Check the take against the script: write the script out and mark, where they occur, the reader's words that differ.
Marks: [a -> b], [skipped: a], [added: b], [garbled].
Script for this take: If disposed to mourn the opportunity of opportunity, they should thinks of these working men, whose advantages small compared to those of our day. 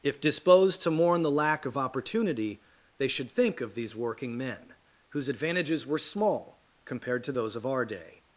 If disposed to mourn the [opportunity -> lack] of opportunity, they should [thinks -> think] of these working men, whose advantages [added: were] small compared to those of our day.